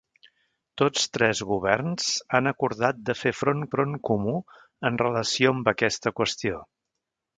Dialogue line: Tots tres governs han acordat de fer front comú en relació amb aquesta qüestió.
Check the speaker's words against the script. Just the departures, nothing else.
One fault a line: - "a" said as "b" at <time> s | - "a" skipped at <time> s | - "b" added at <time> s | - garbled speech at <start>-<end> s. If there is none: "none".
- "front" added at 3.7 s